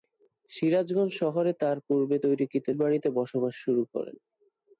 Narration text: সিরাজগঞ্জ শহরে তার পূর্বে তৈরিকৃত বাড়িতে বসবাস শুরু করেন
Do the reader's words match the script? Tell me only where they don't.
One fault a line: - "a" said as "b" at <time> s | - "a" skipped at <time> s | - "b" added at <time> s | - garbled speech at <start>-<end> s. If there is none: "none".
none